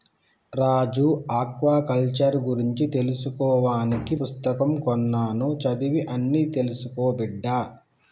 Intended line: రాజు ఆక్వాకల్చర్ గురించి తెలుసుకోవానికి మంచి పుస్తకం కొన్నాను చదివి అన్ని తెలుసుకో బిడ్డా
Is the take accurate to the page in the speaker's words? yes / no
no